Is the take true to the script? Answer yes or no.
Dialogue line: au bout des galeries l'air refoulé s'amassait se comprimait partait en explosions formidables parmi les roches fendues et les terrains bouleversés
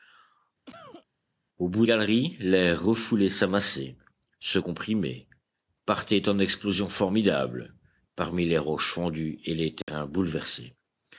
no